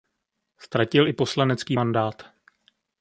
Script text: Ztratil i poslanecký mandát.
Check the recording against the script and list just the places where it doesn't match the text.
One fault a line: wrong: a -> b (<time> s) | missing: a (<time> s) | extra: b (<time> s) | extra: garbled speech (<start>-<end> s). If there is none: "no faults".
no faults